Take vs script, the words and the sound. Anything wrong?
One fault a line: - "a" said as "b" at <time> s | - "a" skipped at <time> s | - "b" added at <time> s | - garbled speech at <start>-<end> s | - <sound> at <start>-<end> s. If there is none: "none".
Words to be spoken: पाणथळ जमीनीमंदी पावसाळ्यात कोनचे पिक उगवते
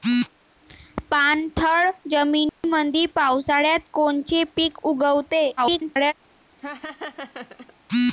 - dropout at 2.5-2.6 s
- garbled speech at 5.6-6.1 s
- laugh at 6.6-7.7 s